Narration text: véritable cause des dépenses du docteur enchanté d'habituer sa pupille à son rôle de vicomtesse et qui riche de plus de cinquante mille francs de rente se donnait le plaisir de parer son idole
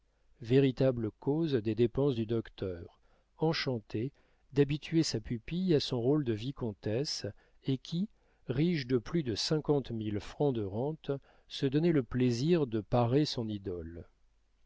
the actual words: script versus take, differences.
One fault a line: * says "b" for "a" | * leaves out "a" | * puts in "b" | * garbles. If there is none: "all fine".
all fine